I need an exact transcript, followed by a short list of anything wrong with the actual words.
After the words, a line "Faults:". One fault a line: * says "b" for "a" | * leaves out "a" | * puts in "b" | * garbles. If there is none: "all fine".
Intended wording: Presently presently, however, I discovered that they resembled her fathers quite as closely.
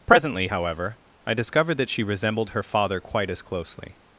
Presently, however, I discovered that she resembled her father quite as closely.
Faults:
* leaves out "presently"
* says "she" for "they"
* says "father" for "fathers"